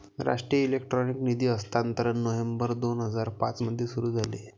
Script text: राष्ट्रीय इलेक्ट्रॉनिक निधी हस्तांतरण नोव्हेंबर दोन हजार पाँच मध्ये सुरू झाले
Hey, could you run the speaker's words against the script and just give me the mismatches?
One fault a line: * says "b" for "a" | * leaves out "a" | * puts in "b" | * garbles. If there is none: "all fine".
all fine